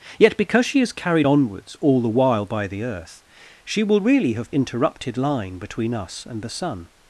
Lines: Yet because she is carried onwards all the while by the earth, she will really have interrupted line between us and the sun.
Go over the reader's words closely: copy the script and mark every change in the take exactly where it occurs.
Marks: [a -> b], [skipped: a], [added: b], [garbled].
Yet because she is carried onwards all the while by the earth, she will really have interrupted line between us and the sun.